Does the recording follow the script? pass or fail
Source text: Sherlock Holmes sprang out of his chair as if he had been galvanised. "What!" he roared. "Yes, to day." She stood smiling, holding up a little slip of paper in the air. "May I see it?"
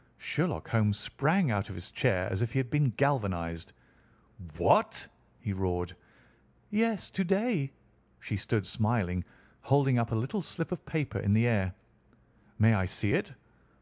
pass